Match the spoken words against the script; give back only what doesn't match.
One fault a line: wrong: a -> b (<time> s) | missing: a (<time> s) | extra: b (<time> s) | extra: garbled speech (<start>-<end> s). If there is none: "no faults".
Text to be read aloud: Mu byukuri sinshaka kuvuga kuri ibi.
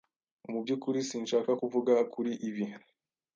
no faults